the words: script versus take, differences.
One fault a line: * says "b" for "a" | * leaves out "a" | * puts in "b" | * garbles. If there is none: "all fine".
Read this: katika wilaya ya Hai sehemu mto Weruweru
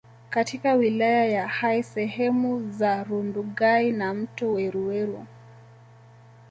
* puts in "za Rundugai na"